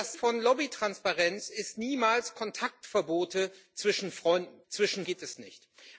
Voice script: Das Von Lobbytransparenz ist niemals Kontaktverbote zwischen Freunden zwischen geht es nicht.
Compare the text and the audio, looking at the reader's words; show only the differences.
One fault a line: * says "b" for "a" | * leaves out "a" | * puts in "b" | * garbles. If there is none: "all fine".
all fine